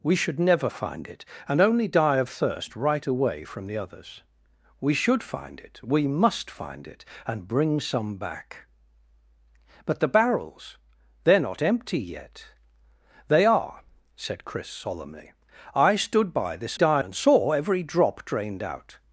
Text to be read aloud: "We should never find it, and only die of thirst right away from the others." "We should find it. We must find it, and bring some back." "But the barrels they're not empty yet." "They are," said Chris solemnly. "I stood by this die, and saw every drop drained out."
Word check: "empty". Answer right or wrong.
right